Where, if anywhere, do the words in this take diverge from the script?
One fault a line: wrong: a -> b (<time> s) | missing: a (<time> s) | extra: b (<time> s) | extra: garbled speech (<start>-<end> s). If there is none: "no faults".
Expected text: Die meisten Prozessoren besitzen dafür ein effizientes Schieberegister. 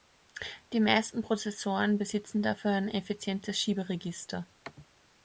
no faults